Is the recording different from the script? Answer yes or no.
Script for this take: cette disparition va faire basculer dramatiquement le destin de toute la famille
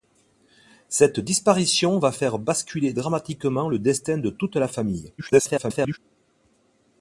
yes